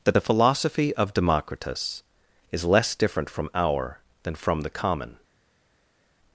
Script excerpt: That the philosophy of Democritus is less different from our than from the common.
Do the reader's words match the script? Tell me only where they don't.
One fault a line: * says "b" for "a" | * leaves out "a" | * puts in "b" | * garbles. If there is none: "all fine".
all fine